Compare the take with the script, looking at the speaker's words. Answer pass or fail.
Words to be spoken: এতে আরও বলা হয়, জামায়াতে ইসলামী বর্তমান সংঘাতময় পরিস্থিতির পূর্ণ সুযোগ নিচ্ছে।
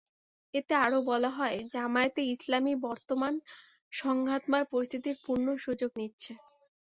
pass